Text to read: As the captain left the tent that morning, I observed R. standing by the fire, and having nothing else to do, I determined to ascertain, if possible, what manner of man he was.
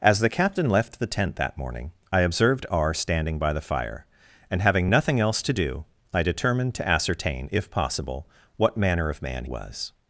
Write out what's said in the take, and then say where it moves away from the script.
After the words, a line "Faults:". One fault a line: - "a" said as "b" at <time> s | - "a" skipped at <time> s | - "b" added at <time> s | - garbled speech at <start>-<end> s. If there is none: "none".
As the captain left the tent that morning, I observed R. standing by the fire, and having nothing else to do, I determined to ascertain, if possible, what manner of man was.
Faults:
- "he" skipped at 9.4 s